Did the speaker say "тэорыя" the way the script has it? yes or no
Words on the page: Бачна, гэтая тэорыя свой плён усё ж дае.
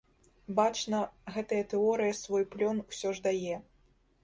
yes